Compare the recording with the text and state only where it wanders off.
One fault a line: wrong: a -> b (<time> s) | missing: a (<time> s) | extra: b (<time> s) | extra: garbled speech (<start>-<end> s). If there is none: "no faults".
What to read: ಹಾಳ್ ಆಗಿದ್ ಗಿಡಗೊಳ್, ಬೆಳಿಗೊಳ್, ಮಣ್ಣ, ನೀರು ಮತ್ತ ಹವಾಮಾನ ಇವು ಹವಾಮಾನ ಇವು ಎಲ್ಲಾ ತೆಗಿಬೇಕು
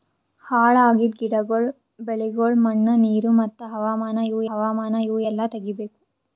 no faults